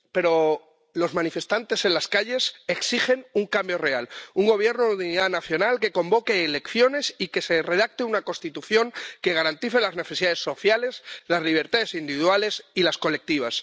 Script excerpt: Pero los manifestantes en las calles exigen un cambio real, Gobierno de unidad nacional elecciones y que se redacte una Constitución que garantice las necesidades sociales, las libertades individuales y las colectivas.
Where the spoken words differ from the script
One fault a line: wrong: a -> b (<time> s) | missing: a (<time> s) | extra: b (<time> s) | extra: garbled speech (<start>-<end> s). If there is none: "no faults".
extra: un (4.3 s)
extra: que convoque (5.8 s)